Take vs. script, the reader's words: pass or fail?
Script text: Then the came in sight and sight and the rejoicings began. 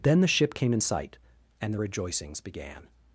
fail